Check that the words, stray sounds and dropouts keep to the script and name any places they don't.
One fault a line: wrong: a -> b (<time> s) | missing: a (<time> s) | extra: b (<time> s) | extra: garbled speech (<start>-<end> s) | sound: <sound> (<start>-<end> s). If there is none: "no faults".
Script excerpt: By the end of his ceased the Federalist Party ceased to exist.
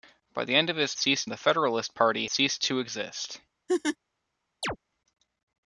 sound: laugh (3.7-4.0 s)
sound: chirp (4.6-4.8 s)